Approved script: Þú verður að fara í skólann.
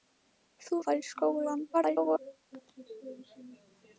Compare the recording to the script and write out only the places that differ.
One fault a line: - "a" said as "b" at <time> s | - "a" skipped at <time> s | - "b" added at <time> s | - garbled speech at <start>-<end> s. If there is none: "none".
- "verður" skipped at 0.8 s
- garbled speech at 1.7-2.2 s